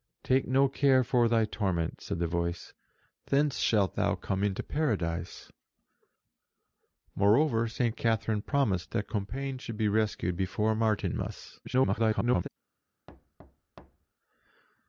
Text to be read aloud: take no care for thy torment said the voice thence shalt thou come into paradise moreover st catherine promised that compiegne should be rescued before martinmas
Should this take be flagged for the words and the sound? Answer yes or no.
yes